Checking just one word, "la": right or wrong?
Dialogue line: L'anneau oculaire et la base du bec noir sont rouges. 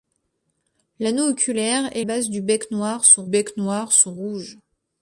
wrong